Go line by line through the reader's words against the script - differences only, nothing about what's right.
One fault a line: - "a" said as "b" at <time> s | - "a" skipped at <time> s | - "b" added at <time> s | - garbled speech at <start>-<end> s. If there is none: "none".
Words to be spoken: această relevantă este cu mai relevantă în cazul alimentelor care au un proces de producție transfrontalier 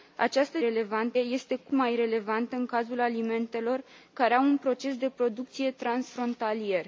none